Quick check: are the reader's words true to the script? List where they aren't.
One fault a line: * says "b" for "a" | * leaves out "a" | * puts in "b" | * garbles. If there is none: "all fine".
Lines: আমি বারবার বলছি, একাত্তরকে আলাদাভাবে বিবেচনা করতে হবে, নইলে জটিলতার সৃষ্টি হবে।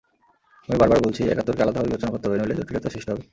all fine